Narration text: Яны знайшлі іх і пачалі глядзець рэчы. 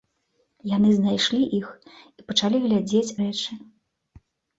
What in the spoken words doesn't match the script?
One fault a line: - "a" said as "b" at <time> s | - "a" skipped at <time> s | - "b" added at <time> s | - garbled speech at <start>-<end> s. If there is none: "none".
none